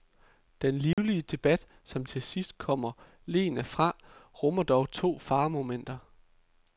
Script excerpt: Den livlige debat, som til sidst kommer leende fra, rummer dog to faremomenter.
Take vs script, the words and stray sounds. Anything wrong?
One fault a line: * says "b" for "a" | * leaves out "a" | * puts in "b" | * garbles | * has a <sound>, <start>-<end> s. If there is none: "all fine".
* has a dropout, 0.9-1.0 s